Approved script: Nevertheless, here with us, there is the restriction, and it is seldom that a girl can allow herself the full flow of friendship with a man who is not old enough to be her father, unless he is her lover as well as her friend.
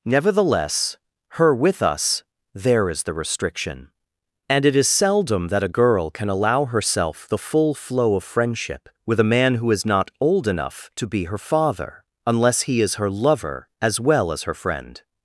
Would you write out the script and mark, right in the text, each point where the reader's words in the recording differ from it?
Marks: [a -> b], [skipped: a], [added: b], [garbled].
Nevertheless, [here -> her] with us, there is the restriction, and it is seldom that a girl can allow herself the full flow of friendship with a man who is not old enough to be her father, unless he is her lover as well as her friend.